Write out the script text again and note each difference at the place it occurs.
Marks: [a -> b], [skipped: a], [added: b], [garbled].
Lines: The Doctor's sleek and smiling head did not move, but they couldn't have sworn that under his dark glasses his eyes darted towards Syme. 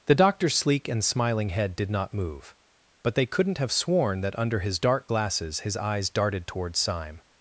The Doctor's sleek and smiling head did not move, but they couldn't have sworn that under his dark glasses his eyes darted towards Syme.